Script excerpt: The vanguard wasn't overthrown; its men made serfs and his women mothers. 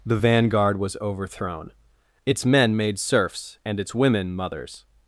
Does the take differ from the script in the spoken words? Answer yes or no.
yes